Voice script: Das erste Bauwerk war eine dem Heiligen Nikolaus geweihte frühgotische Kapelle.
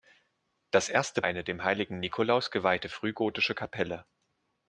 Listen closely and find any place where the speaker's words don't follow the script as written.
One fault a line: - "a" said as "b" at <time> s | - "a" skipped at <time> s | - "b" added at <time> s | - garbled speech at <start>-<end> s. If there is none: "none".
- "Bauwerk war" skipped at 1.2 s